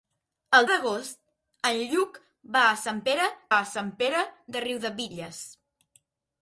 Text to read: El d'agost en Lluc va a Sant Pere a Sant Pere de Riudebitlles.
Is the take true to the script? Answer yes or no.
yes